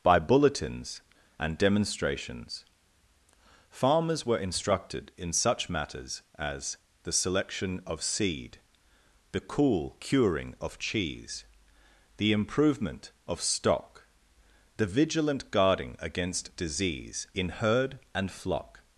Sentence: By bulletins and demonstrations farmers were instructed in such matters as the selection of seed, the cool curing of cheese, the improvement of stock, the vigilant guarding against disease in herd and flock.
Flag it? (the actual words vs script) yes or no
no